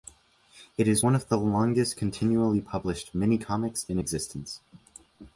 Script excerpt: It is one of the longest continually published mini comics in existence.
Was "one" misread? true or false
false